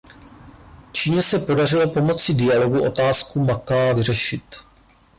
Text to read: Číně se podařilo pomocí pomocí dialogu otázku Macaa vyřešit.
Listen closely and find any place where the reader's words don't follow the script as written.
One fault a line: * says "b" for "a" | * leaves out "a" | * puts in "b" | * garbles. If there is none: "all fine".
* leaves out "pomocí"